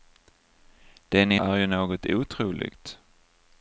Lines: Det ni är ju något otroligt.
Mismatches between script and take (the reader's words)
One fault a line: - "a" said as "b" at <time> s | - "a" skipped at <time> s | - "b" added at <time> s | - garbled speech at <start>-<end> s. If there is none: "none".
none